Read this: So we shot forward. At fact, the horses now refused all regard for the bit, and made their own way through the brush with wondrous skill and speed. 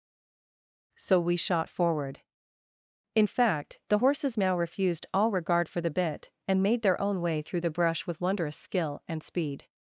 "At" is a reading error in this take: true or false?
true